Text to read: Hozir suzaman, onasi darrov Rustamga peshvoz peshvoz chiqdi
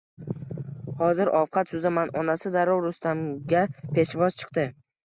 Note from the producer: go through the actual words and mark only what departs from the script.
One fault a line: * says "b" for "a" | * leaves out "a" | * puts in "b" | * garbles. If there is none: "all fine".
* puts in "ovqat"
* leaves out "peshvoz"